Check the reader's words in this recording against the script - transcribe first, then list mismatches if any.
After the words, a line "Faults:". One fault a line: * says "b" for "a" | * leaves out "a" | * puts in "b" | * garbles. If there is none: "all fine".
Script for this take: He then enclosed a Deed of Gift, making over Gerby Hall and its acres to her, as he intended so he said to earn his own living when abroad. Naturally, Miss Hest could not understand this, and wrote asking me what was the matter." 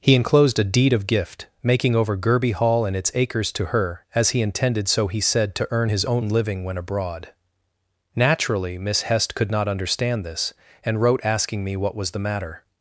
He enclosed a Deed of Gift, making over Gerby Hall and its acres to her, as he intended so he said to earn his own living when abroad. Naturally, Miss Hest could not understand this, and wrote asking me what was the matter."
Faults:
* leaves out "then"